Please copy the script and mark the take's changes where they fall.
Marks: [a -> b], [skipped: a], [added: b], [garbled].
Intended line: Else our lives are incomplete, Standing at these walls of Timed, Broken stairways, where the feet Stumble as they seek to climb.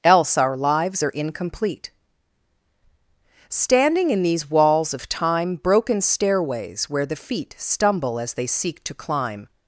Else our lives are incomplete, Standing [at -> in] these walls of [Timed, -> Time] Broken stairways, where the feet Stumble as they seek to climb.